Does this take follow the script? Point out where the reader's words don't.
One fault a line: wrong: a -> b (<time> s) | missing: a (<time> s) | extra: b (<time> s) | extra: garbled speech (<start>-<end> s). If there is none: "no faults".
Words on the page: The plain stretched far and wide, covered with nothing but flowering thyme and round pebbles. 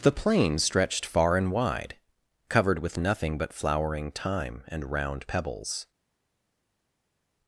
no faults